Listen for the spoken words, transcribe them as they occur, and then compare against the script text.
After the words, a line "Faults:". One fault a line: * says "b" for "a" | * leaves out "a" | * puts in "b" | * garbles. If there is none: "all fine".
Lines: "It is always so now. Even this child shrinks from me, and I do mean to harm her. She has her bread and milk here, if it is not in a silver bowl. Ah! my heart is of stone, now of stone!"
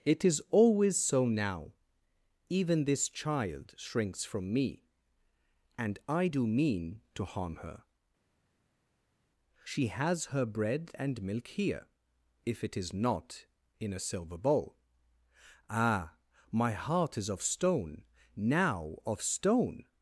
"It is always so now. Even this child shrinks from me, and I do mean to harm her. She has her bread and milk here, if it is not in a silver bowl. Ah! my heart is of stone, now of stone!"
Faults:
all fine